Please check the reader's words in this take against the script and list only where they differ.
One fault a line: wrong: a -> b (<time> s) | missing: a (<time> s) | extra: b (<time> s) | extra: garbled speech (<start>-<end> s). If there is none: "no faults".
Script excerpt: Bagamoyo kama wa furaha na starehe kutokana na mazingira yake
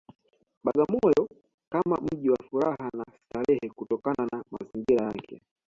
extra: mji (2.0 s)